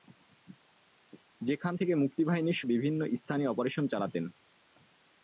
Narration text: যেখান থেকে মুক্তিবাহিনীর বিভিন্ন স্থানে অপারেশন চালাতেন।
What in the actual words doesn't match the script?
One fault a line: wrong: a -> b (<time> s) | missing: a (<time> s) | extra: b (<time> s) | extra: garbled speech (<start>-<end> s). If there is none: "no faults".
no faults